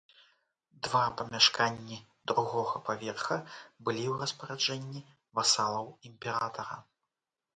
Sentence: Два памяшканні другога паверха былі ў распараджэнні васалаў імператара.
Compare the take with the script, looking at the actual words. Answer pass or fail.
pass